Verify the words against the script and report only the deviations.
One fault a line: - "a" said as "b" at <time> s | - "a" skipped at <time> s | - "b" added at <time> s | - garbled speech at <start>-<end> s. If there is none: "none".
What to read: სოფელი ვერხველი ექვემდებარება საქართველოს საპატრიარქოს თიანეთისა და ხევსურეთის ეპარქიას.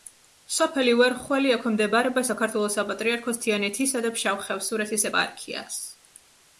- "ფშავ" added at 4.2 s